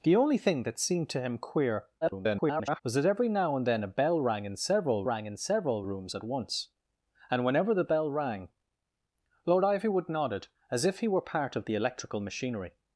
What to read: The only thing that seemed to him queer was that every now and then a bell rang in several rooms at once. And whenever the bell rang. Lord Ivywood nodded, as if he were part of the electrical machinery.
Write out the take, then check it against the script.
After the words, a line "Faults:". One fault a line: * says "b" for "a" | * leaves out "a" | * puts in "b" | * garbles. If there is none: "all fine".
The only thing that seemed to him queer [garbled] was that every now and then a bell rang in several rang in several rooms at once. And whenever the bell rang. Lord Ivywood nodded, as if he were part of the electrical machinery.
Faults:
* garbles
* puts in "rang in several"